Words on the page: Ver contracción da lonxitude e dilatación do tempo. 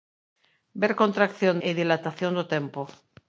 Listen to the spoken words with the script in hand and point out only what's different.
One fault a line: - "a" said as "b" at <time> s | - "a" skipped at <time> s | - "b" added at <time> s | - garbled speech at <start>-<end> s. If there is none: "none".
- "da lonxitude" skipped at 1.6 s